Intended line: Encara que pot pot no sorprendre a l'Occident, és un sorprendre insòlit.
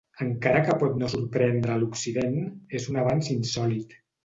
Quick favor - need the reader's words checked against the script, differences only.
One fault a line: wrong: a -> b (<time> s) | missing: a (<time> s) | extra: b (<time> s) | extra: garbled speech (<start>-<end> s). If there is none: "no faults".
missing: pot (0.9 s)
wrong: sorprendre -> avanç (3.1 s)